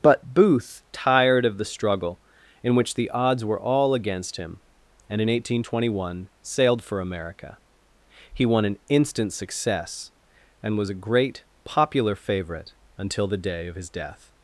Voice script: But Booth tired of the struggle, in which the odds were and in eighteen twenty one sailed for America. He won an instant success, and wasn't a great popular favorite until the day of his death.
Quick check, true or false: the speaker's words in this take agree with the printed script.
false